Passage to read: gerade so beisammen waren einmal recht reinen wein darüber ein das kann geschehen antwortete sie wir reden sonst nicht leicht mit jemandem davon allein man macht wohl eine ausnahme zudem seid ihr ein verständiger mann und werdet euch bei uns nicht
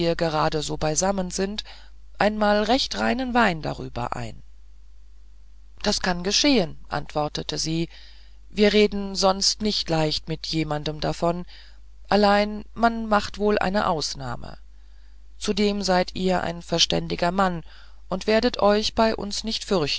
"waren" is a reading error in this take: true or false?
true